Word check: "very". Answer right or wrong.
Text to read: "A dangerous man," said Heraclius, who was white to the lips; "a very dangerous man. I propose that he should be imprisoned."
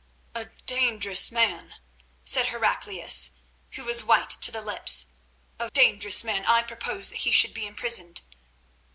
wrong